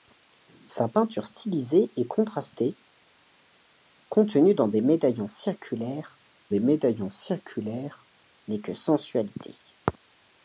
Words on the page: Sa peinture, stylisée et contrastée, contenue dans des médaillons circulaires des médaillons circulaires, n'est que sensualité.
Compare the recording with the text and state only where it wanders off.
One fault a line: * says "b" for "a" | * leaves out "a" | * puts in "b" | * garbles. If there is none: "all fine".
all fine